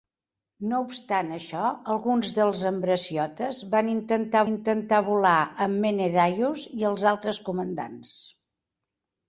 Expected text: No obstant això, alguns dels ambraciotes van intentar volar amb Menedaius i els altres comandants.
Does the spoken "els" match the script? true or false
true